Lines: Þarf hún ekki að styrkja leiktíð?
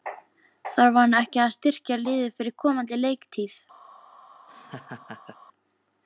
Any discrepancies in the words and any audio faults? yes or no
yes